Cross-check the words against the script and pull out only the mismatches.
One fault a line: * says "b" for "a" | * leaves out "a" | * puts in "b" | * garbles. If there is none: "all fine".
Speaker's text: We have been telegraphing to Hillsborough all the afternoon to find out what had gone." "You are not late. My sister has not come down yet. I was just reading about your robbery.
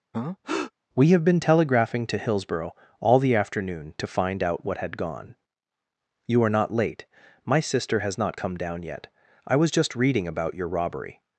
all fine